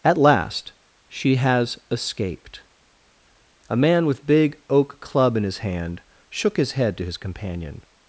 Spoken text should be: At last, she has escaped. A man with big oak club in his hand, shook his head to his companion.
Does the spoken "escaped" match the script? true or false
true